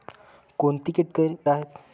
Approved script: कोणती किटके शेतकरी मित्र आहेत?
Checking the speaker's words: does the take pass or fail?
fail